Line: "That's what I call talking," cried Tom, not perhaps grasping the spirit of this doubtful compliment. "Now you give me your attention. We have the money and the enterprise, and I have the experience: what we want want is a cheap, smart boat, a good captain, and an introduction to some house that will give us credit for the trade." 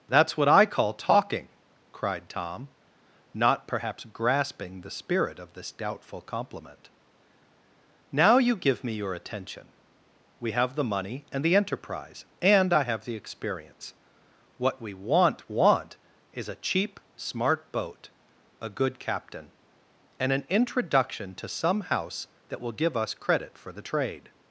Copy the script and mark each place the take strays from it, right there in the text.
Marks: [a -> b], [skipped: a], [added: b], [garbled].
"That's what I call talking," cried Tom, not perhaps grasping the spirit of this doubtful compliment. "Now you give me your attention. We have the money and the enterprise, and I have the experience: what we want want is a cheap, smart boat, a good captain, and an introduction to some house that will give us credit for the trade."